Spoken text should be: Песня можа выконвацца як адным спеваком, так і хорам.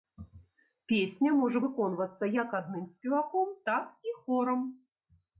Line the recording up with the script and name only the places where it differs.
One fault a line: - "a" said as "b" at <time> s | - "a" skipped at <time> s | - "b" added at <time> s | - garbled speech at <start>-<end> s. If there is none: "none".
none